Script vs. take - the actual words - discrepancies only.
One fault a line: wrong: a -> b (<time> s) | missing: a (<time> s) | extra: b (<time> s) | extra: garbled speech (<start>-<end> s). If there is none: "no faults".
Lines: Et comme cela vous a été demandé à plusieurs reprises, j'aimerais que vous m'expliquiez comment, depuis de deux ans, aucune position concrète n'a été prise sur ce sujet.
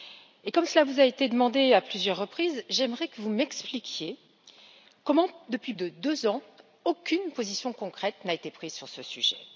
no faults